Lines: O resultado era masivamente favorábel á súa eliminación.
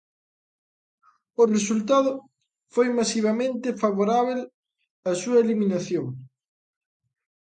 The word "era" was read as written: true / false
false